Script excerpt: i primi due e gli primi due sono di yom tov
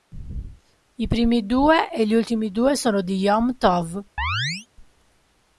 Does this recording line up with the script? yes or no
no